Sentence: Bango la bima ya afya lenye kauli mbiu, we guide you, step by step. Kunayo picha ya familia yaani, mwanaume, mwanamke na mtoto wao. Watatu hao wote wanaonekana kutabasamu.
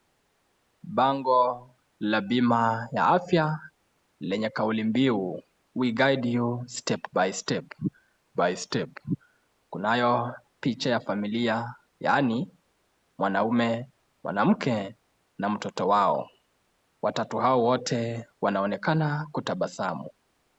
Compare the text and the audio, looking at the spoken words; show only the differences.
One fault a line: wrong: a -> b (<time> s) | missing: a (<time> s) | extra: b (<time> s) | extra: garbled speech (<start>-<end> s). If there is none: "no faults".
extra: by step (8.4 s)